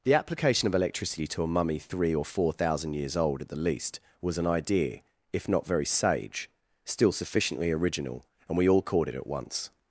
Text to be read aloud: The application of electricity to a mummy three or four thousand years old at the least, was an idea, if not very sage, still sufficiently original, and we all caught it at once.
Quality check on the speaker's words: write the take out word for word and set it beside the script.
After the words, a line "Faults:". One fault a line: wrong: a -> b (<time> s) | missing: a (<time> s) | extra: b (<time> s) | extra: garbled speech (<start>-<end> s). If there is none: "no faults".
The application of electricity to a mummy three or four thousand years old at the least, was an idea, if not very sage, still sufficiently original, and we all caught it at once.
Faults:
no faults